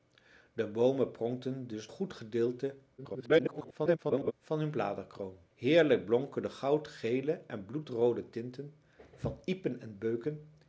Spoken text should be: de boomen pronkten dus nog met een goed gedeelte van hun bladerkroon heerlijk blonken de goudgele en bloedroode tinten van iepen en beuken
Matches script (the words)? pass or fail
fail